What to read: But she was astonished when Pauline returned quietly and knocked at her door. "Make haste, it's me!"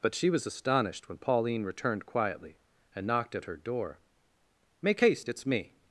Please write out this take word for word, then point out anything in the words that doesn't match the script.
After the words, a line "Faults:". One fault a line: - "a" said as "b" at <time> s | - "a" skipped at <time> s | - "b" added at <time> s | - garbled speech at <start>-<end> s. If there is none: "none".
But she was astonished when Pauline returned quietly and knocked at her door. "Make haste, it's me!"
Faults:
none